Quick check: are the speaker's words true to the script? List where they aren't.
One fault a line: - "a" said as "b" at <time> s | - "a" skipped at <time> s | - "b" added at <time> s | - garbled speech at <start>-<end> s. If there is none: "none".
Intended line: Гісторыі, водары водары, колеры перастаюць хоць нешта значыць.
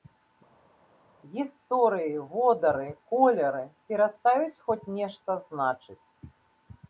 - "водары" skipped at 2.9 s